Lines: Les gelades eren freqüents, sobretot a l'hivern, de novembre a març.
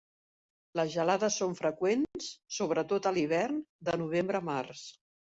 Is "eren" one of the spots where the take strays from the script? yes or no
yes